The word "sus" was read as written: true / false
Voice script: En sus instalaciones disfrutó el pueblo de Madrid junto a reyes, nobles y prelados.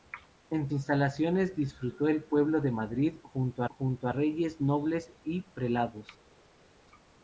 false